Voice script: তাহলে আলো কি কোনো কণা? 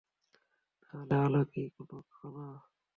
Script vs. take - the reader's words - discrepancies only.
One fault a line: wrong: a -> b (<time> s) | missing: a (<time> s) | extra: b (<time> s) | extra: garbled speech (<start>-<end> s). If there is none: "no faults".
no faults